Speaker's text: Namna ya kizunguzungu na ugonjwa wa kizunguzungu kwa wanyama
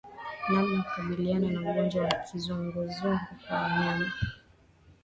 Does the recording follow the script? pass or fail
fail